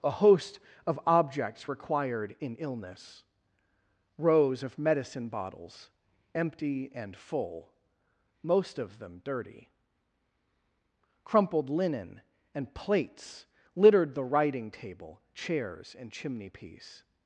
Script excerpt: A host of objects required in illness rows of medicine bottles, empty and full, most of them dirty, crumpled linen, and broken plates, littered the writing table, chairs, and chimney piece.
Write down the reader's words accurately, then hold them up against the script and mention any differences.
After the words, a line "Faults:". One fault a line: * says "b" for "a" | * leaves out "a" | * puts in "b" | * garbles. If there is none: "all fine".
A host of objects required in illness rows of medicine bottles, empty and full, most of them dirty, crumpled linen, and plates, littered the writing table, chairs, and chimney piece.
Faults:
* leaves out "broken"